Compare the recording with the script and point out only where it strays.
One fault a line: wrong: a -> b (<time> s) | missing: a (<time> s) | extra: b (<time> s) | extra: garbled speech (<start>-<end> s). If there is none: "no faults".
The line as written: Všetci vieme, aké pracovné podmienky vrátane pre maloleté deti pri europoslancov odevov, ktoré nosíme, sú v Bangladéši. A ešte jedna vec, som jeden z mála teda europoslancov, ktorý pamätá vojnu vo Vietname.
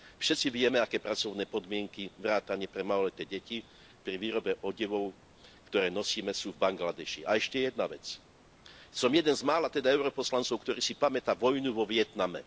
wrong: europoslancov -> výrobe (4.2 s)
extra: si (10.8 s)